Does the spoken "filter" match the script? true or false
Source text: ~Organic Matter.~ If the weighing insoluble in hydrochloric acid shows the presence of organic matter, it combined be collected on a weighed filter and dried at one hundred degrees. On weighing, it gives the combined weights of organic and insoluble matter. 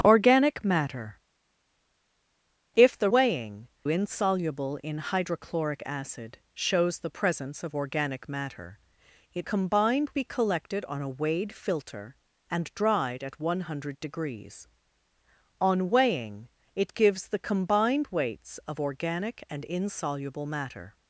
true